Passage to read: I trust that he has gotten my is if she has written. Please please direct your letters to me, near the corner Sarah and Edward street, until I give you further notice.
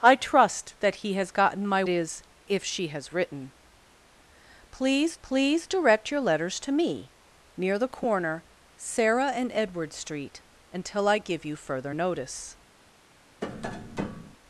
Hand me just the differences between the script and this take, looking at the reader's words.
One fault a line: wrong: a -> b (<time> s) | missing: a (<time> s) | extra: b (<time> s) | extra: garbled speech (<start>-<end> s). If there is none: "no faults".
no faults